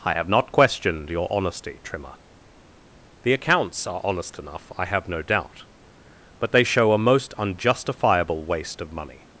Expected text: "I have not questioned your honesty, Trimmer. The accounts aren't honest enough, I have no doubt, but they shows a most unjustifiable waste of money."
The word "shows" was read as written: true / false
false